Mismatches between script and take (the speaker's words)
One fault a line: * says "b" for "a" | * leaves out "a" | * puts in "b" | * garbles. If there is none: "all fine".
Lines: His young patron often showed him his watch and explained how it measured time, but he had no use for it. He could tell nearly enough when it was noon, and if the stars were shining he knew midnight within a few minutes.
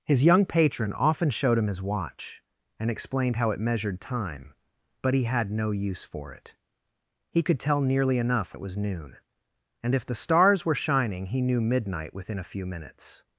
* leaves out "when"